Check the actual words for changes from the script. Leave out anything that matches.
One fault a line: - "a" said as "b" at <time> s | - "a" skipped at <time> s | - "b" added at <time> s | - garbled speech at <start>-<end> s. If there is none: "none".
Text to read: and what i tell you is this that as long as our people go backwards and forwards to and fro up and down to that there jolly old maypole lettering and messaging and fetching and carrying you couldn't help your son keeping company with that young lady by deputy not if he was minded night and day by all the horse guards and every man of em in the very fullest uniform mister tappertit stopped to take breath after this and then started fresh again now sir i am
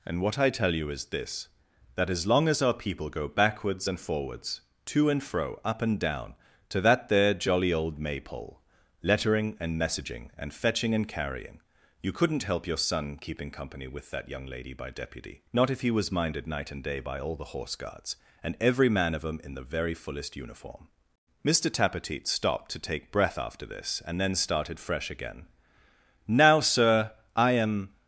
none